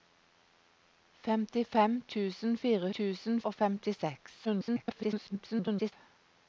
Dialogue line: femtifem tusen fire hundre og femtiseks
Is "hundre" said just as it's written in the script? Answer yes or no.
no